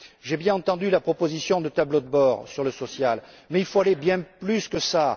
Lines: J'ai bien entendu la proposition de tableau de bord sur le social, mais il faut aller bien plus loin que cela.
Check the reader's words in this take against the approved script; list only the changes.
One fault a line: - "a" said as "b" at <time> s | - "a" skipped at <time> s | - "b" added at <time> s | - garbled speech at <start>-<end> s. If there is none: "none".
none